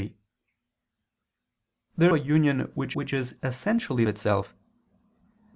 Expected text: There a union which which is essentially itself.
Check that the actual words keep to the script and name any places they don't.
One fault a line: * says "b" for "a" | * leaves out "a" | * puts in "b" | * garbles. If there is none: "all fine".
all fine